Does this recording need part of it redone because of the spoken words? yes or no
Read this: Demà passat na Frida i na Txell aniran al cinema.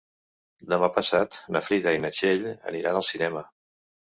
no